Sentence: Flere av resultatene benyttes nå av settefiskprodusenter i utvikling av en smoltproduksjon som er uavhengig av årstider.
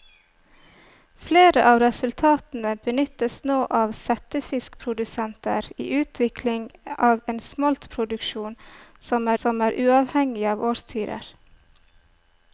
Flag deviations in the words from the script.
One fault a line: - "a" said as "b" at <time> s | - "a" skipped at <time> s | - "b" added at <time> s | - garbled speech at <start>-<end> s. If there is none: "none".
- "som" added at 9.4 s